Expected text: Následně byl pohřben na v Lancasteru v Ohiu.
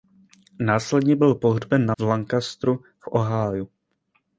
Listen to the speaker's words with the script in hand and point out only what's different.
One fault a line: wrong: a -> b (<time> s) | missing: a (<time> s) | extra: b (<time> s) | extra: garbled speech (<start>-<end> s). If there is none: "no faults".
no faults